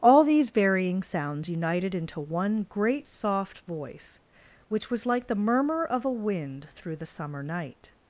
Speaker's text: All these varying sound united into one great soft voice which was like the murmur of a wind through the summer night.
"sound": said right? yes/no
no